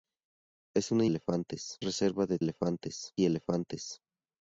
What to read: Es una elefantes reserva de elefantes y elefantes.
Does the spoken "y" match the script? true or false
true